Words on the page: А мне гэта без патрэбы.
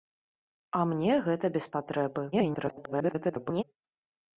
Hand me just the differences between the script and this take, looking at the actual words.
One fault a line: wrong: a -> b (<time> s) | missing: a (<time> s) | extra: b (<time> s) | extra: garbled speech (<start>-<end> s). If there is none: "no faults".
extra: garbled speech (2.3-3.6 s)